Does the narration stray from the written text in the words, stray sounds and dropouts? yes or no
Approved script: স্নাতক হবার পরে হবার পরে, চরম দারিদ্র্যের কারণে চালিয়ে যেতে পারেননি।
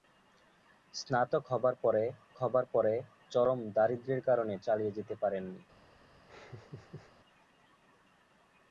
yes